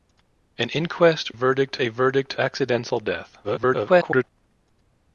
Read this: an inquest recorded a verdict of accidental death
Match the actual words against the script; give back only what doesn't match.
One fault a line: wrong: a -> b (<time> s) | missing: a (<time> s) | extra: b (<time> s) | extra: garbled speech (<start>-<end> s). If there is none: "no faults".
wrong: recorded -> verdict (1.3 s)
missing: of (2.4 s)
extra: garbled speech (3.4-4.2 s)